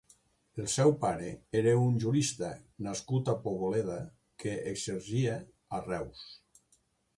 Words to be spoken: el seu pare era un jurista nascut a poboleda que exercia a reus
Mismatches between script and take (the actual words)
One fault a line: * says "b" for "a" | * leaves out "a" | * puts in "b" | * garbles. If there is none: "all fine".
all fine